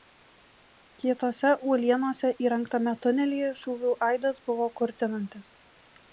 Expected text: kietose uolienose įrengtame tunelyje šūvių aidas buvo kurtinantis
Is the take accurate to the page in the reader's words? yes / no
yes